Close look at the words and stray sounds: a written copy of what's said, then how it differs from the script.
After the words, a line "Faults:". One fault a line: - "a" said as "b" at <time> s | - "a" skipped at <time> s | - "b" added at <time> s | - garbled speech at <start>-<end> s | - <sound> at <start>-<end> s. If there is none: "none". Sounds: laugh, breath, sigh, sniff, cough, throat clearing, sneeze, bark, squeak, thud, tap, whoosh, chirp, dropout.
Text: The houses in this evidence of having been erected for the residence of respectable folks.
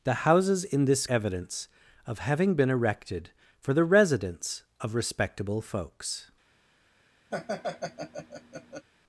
The houses in this evidence of having been erected for the residence of respectable folks.
Faults:
- laugh at 7.3-8.9 s